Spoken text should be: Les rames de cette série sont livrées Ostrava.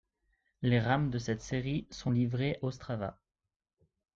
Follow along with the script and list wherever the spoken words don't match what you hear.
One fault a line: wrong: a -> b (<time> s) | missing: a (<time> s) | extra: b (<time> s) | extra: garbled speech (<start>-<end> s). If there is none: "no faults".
no faults